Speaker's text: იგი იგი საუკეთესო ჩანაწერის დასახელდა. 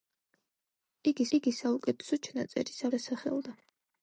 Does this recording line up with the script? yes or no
yes